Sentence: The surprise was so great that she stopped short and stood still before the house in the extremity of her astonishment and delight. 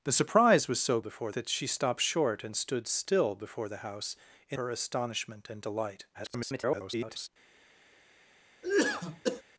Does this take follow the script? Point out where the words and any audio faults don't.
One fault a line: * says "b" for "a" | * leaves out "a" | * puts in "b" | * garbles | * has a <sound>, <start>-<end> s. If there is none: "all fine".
* says "before" for "great"
* leaves out "the extremity of"
* garbles
* has a cough, 8.6-9.4 s